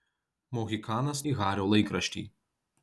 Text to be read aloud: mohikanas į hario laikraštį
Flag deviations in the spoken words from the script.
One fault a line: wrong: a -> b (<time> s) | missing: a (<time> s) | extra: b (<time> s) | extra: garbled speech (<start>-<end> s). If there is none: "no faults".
no faults